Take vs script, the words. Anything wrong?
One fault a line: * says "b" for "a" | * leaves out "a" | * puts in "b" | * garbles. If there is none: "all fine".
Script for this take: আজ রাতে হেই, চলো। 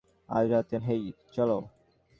all fine